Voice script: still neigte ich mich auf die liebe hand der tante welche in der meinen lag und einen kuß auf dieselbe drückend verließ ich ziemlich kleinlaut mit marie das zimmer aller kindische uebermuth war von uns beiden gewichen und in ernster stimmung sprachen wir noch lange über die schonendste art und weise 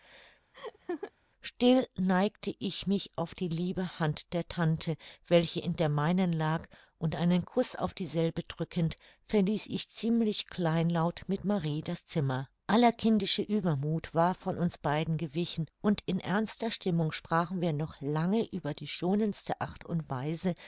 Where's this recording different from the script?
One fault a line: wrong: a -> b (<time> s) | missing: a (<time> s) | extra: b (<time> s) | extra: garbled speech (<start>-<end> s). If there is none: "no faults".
no faults